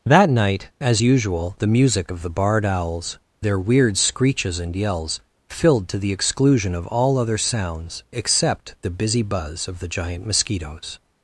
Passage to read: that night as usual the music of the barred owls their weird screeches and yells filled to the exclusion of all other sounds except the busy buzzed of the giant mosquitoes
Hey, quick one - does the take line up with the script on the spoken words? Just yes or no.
no